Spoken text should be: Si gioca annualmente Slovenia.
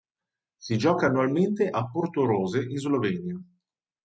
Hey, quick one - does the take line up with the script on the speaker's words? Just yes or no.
no